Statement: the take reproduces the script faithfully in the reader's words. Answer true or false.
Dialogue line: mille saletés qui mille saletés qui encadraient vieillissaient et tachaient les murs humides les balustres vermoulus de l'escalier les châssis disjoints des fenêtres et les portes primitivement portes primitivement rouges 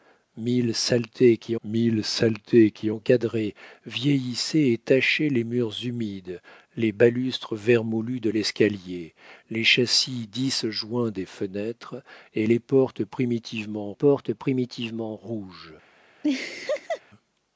true